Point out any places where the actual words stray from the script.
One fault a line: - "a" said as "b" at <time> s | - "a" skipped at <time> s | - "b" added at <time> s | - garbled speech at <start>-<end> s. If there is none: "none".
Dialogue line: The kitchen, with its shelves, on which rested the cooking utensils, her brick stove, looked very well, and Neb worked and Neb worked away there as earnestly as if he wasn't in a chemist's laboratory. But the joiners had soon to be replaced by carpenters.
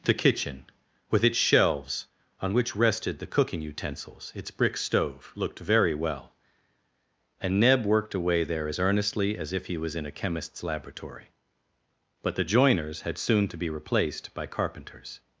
- "her" said as "its" at 4.3 s
- "and Neb worked" skipped at 8.2 s
- "wasn't" said as "was" at 9.8 s